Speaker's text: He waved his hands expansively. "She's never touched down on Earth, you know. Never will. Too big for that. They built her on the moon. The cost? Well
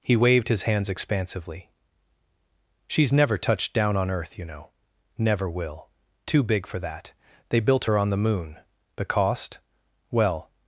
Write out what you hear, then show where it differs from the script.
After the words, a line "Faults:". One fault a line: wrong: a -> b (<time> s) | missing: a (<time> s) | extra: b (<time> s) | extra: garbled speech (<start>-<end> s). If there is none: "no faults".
He waved his hands expansively. "She's never touched down on Earth, you know. Never will. Too big for that. They built her on the moon. The cost? Well
Faults:
no faults